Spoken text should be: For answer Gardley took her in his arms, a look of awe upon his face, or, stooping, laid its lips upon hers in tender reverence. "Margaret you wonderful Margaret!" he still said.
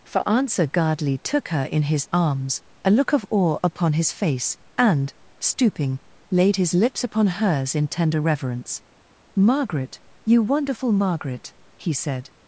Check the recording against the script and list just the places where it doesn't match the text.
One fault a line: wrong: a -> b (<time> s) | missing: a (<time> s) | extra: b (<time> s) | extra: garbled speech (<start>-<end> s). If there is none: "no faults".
wrong: or -> and (4.8 s)
wrong: its -> his (6.6 s)
missing: still (11.9 s)